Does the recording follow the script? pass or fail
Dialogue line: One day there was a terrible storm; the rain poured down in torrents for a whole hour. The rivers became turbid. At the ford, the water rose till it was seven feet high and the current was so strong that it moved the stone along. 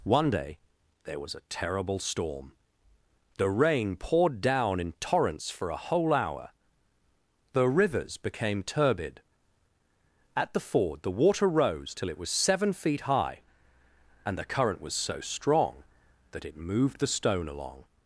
pass